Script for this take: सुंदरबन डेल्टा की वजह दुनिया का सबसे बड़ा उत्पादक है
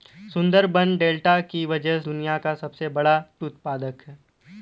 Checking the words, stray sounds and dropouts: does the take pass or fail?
pass